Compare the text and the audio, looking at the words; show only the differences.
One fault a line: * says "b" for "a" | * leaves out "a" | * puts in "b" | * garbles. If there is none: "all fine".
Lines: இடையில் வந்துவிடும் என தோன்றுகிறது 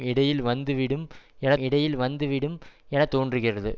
* puts in "இடையில் வந்துவிடும் என"